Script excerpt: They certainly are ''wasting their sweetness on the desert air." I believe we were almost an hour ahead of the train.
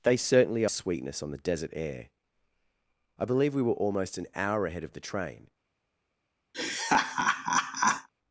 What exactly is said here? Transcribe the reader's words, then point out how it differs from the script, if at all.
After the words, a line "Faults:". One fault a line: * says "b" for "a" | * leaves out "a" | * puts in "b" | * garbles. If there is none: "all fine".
They certainly sweetness on the desert air." I believe we were almost an hour ahead of the train.
Faults:
* leaves out "are wasting their"